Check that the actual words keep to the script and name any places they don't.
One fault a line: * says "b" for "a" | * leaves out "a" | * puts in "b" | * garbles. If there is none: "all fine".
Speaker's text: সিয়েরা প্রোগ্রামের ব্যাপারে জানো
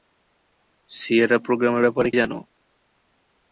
all fine